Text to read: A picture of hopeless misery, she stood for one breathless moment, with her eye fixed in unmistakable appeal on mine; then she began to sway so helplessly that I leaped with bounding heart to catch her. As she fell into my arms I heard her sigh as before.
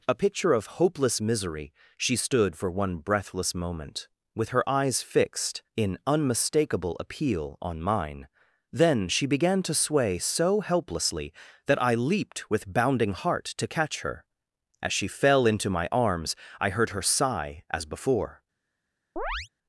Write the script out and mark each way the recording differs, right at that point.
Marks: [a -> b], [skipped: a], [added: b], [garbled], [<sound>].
A picture of hopeless misery, she stood for one breathless moment, with her [eye -> eyes] fixed in unmistakable appeal on mine; then she began to sway so helplessly that I leaped with bounding heart to catch her. As she fell into my arms I heard her sigh as before. [chirp]